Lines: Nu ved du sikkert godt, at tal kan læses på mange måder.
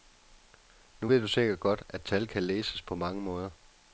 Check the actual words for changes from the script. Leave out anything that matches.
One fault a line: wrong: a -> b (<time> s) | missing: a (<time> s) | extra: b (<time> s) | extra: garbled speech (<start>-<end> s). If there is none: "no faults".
no faults